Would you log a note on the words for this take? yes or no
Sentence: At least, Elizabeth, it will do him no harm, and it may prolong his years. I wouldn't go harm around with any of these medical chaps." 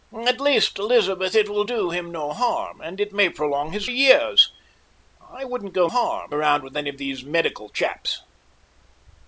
no